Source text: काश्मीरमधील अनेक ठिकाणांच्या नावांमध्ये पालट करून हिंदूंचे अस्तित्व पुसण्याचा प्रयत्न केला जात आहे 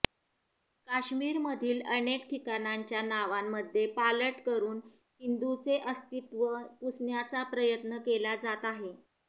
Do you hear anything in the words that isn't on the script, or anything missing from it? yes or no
no